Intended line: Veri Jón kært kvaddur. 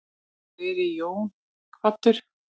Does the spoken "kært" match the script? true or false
false